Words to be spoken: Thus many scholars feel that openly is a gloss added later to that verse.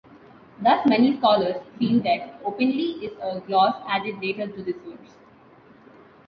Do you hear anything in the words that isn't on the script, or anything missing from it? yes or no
yes